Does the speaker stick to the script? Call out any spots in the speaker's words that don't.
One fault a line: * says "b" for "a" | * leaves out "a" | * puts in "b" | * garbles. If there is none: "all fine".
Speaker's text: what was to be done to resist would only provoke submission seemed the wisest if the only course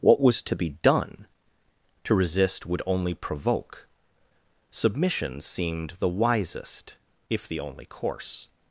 all fine